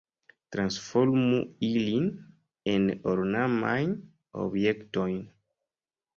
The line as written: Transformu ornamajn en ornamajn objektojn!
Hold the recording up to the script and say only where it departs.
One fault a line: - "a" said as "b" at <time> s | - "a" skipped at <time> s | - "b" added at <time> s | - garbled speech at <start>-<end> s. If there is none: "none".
- "ornamajn" said as "ilin" at 1.7 s